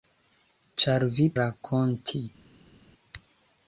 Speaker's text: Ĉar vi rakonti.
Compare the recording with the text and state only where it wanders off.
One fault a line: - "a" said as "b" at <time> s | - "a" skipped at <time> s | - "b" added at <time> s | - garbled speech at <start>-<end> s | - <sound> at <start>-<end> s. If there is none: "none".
none